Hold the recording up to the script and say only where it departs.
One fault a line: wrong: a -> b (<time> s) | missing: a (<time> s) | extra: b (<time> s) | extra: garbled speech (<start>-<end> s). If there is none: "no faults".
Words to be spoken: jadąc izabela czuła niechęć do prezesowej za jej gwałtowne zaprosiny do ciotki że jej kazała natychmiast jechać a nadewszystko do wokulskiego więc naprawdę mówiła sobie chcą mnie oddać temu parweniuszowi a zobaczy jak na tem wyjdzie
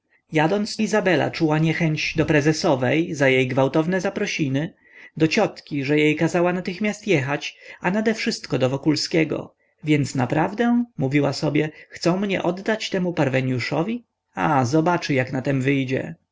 no faults